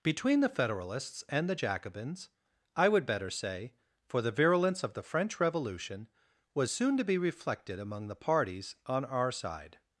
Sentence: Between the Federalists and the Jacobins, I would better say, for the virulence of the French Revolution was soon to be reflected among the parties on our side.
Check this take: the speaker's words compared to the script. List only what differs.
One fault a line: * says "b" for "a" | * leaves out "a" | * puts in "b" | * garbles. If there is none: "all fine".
all fine